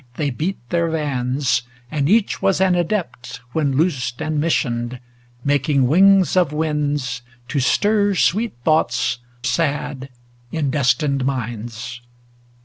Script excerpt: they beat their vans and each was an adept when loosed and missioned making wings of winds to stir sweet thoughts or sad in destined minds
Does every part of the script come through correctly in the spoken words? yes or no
no